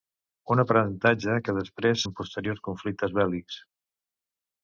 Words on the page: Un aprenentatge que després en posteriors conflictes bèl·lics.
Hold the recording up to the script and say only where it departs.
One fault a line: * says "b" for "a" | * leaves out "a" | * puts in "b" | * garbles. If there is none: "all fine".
all fine